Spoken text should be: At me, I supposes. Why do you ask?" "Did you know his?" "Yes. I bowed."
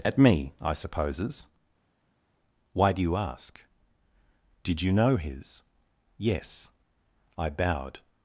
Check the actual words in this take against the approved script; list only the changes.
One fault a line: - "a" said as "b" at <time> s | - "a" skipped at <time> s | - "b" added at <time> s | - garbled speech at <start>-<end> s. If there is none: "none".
none